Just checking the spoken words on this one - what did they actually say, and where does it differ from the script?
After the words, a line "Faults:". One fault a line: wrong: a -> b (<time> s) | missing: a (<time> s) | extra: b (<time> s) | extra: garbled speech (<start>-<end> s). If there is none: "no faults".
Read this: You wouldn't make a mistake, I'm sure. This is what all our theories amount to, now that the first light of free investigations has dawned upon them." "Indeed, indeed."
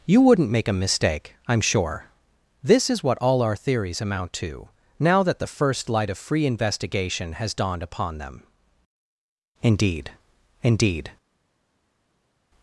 You wouldn't make a mistake, I'm sure. This is what all our theories amount to, now that the first light of free investigation has dawned upon them." "Indeed, indeed."
Faults:
wrong: investigations -> investigation (6.5 s)